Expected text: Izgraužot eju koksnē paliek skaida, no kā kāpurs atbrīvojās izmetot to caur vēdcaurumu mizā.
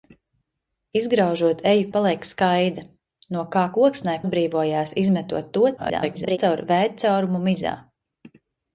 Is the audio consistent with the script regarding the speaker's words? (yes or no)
no